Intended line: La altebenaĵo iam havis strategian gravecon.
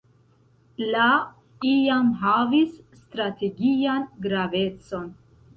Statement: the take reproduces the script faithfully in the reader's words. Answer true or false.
false